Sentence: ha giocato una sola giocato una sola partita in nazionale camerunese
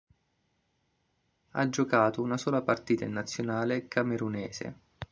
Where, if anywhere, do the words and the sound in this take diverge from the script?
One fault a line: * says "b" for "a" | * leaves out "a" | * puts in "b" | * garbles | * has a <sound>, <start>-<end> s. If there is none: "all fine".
* leaves out "giocato una sola"